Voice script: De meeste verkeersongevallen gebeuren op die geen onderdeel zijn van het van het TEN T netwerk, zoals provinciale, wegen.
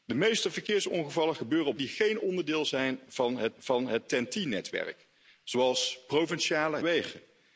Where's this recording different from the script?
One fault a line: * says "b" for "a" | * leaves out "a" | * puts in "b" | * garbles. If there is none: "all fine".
all fine